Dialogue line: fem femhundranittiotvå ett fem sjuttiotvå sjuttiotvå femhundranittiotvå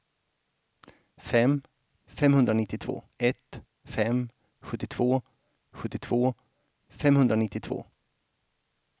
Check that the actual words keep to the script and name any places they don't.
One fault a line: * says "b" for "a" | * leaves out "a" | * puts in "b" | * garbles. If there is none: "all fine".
all fine